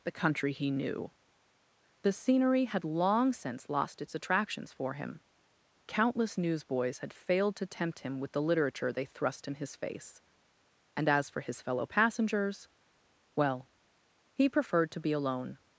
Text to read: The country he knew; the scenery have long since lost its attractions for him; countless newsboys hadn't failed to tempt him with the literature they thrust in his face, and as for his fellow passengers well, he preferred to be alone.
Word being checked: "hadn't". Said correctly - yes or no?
no